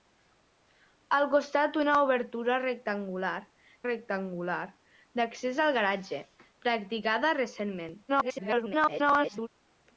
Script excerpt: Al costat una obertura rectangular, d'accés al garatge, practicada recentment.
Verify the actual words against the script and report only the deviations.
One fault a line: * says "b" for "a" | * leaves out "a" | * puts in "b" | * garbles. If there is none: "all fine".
* puts in "rectangular"
* garbles